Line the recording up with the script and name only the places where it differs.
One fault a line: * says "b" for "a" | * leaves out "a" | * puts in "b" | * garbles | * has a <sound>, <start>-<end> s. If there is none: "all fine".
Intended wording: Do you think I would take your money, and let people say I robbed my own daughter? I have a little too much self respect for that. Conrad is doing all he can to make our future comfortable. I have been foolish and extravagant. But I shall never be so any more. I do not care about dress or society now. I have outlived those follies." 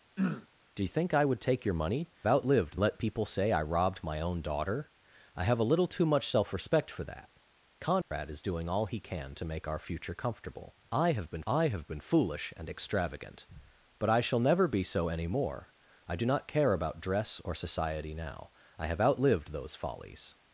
* has a throat clearing, 0.2-0.5 s
* says "outlived" for "and"
* has a dropout, 8.0-8.1 s
* puts in "I have been"